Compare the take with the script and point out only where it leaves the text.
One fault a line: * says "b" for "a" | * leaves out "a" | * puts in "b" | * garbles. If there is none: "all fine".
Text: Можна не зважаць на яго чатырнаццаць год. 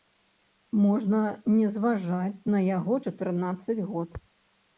all fine